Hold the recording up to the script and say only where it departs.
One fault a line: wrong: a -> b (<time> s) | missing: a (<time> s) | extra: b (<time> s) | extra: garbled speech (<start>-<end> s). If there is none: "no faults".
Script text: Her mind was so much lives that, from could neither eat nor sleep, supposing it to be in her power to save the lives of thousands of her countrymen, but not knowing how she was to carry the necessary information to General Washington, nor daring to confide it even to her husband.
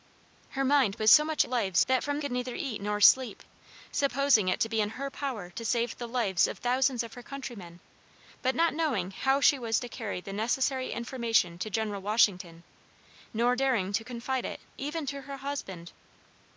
no faults